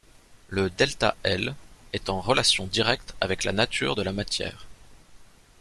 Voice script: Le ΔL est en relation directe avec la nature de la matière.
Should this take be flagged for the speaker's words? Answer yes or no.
no